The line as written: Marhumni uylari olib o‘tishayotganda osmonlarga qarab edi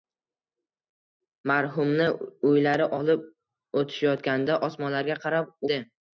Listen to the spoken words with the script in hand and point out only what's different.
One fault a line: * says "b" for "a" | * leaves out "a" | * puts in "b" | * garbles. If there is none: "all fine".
all fine